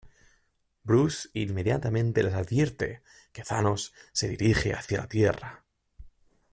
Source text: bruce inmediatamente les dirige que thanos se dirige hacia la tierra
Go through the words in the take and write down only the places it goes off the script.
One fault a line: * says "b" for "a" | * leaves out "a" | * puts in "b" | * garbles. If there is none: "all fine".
* says "advierte" for "dirige"